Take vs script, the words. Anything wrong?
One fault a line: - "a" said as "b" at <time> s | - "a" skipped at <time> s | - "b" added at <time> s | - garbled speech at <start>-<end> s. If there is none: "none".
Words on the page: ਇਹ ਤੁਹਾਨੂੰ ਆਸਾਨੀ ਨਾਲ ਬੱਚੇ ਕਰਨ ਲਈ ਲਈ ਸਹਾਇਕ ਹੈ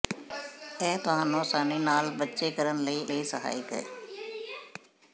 none